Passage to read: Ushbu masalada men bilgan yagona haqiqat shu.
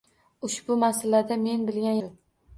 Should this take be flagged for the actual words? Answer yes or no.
yes